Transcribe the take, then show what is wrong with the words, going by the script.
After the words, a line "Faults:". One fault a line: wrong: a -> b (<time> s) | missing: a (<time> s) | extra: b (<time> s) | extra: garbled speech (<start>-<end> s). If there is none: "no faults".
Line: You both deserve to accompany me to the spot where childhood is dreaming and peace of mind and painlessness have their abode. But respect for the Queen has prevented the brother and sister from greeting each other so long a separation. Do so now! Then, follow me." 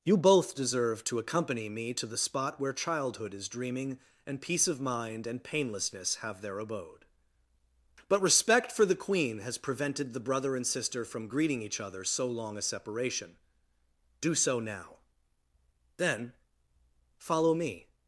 You both deserve to accompany me to the spot where childhood is dreaming and peace of mind and painlessness have their abode. But respect for the Queen has prevented the brother and sister from greeting each other so long a separation. Do so now! Then, follow me."
Faults:
no faults